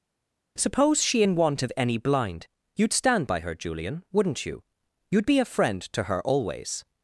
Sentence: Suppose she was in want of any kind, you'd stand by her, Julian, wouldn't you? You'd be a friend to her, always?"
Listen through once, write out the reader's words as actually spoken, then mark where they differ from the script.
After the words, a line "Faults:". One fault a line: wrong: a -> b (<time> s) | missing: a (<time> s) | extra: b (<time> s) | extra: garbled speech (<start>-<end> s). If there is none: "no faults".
Suppose she in want of any blind, you'd stand by her, Julian, wouldn't you? You'd be a friend to her, always?"
Faults:
missing: was (1.2 s)
wrong: kind -> blind (2.0 s)